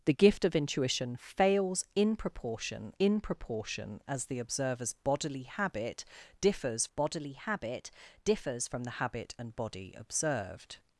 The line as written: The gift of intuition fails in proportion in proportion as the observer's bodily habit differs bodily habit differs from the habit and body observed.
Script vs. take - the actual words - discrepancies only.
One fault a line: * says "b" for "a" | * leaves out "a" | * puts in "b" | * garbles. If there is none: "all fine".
all fine